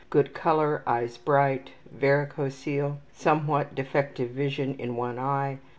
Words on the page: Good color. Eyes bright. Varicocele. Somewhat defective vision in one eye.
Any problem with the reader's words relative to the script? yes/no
no